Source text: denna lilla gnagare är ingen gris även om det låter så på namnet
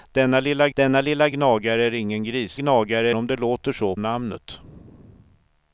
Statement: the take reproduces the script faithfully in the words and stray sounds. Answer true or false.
false